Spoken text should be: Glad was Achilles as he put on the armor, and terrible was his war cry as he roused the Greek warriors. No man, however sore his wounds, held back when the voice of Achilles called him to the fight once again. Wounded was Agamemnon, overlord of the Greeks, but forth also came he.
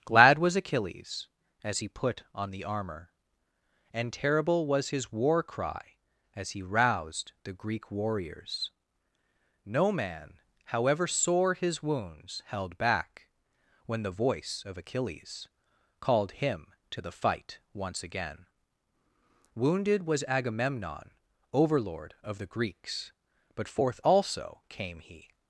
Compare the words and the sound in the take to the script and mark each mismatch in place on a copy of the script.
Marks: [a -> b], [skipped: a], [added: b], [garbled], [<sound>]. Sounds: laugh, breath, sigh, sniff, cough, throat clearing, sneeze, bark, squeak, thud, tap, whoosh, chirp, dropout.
Glad was Achilles as he put on the armor, and terrible was his war cry as he roused the Greek warriors. No man, however sore his wounds, held back when the voice of Achilles called him to the fight once again. Wounded was Agamemnon, overlord of the Greeks, but forth also came he.